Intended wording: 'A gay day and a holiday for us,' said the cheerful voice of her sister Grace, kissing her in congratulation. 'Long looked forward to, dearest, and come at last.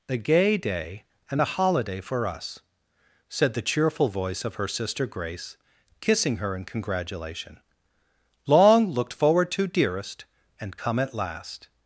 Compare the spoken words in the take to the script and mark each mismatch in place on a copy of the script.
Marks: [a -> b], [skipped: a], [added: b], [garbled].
'A gay day and a holiday for us,' said the cheerful voice of her sister Grace, kissing her in congratulation. 'Long looked forward to, dearest, and come at last.